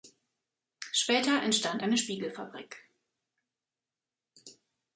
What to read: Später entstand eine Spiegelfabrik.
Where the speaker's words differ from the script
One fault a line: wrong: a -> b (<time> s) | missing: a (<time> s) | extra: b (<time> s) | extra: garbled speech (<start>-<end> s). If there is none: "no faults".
no faults